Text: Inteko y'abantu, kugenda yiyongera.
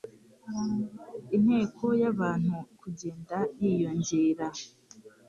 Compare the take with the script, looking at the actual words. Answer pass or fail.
pass